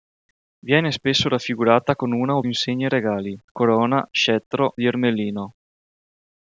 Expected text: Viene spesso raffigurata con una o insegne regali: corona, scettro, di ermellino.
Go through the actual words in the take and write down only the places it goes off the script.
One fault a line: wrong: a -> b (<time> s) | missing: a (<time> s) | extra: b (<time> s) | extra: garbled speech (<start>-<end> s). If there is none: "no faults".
no faults